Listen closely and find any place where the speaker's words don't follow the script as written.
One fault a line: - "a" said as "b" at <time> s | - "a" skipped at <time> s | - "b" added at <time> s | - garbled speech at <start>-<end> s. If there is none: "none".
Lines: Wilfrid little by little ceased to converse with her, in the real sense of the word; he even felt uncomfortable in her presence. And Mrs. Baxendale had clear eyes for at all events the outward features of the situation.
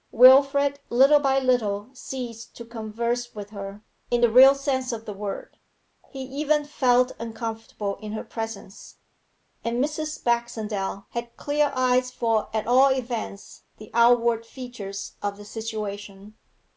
none